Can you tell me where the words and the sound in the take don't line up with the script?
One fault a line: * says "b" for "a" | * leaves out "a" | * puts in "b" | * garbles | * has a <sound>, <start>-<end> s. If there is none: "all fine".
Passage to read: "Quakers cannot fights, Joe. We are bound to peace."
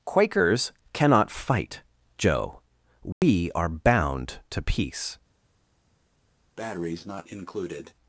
* says "fight" for "fights"
* has a dropout, 3.1-3.2 s
* has a breath, 6.6-7.9 s